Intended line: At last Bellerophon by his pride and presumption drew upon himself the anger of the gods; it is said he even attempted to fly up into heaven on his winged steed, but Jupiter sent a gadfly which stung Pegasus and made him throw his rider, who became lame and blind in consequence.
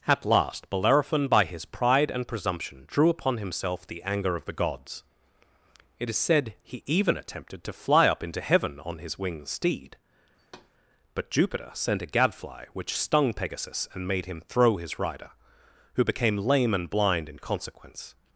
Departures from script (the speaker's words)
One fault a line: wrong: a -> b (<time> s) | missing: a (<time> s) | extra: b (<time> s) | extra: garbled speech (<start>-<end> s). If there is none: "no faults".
no faults